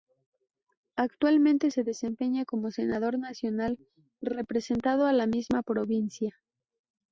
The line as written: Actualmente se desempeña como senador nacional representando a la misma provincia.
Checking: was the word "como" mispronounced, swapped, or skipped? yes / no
no